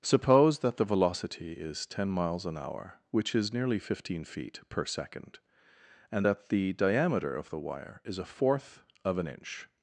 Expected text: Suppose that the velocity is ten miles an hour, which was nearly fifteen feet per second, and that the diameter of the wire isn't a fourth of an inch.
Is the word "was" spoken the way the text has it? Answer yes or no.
no